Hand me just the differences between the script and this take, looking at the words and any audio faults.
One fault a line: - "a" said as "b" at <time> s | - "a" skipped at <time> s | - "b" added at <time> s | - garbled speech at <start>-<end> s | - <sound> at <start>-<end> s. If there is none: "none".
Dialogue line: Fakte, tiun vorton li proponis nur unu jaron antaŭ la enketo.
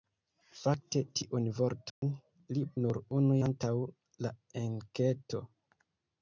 - dropout at 1.9-2.0 s
- "proponis" skipped at 2.6 s
- "jaron" skipped at 3.4 s